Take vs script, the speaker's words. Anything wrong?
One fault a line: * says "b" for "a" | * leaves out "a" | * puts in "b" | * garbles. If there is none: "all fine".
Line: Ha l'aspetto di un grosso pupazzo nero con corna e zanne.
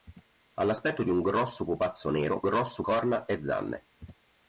* says "grosso" for "con"